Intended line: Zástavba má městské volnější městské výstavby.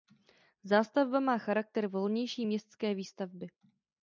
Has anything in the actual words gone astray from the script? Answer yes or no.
yes